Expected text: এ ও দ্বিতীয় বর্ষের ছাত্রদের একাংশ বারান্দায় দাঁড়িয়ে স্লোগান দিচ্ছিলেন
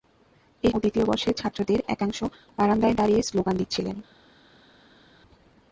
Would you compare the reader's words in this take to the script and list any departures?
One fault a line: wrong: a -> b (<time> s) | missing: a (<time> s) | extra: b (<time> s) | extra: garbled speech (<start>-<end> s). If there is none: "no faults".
no faults